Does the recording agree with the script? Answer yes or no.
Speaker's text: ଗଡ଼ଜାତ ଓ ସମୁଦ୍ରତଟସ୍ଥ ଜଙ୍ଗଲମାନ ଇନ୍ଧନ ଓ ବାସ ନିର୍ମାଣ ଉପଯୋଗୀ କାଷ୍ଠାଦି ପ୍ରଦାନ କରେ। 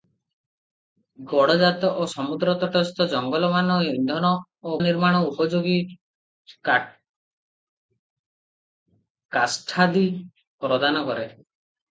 no